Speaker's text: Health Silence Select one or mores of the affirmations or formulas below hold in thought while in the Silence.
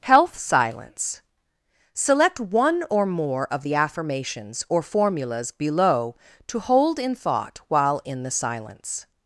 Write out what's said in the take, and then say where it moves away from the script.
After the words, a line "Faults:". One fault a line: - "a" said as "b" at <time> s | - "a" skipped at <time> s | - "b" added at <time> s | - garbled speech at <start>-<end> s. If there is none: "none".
Health Silence Select one or more of the affirmations or formulas below to hold in thought while in the Silence.
Faults:
- "mores" said as "more" at 3.0 s
- "to" added at 6.5 s